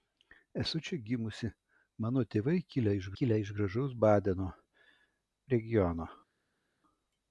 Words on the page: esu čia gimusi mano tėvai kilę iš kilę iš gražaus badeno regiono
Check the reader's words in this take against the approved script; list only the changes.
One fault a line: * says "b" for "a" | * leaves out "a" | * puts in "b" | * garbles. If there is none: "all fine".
all fine